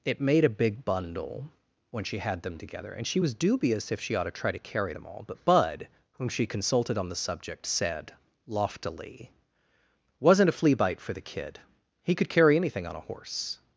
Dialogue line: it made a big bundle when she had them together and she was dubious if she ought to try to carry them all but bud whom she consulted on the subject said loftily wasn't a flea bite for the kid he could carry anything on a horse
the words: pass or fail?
pass